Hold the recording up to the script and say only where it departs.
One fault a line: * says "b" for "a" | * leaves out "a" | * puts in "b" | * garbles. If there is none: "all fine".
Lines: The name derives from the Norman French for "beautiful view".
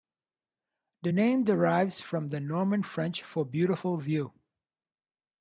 all fine